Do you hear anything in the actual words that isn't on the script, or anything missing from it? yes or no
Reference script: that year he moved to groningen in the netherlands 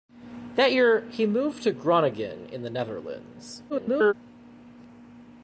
yes